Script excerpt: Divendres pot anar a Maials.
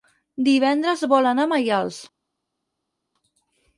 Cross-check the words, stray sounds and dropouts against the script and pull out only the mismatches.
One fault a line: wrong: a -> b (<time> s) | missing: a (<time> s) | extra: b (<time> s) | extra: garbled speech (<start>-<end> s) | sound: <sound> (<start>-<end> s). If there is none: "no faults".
wrong: pot -> vol (1.1 s)